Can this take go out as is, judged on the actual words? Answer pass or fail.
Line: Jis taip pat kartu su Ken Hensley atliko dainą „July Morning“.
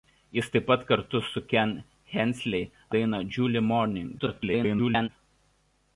fail